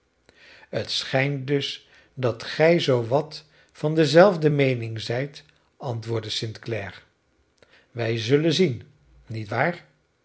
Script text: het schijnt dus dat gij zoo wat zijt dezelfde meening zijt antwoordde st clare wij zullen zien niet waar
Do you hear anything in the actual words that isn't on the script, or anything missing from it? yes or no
yes